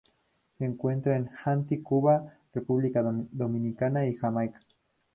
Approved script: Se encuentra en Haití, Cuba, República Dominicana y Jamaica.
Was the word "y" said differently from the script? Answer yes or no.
no